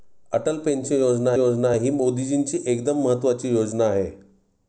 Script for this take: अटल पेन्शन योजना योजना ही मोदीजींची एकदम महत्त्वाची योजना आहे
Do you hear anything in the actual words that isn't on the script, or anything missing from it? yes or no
no